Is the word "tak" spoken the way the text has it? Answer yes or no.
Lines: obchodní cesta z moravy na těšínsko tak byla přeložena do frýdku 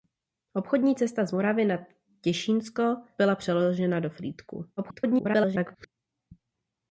no